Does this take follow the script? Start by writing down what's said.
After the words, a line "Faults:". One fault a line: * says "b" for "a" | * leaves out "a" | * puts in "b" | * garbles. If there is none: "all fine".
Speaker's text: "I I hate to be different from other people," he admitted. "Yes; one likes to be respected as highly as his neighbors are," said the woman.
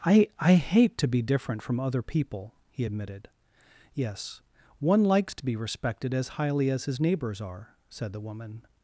"I I hate to be different from other people," he admitted. "Yes; one likes to be respected as highly as his neighbors are," said the woman.
Faults:
all fine